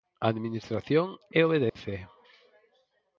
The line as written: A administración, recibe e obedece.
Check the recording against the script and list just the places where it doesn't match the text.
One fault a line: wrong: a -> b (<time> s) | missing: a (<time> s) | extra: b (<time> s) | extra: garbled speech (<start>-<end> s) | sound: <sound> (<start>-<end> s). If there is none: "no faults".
missing: recibe (1.1 s)
sound: dropout (1.7-1.8 s)